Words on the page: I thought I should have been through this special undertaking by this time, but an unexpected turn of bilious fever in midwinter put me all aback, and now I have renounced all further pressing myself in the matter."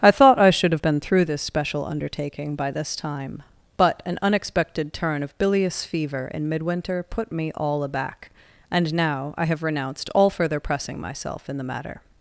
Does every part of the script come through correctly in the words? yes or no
yes